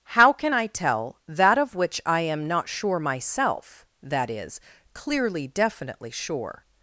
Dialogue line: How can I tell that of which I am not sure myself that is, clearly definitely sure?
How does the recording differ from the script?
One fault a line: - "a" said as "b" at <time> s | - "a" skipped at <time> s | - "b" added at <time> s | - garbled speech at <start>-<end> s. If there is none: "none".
none